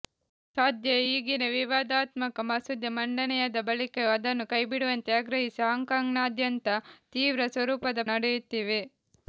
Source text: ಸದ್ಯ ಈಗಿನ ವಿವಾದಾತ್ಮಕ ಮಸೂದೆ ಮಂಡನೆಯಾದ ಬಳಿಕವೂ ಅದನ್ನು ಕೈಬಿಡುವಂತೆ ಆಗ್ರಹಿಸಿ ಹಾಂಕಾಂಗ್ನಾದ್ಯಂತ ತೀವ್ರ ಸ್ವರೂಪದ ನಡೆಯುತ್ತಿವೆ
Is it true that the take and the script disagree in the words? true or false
false